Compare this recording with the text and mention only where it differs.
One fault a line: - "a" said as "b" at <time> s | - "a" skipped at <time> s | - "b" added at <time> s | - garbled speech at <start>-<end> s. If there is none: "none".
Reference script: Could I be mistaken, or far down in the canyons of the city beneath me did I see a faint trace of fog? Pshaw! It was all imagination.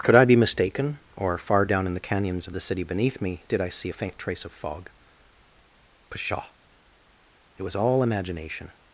none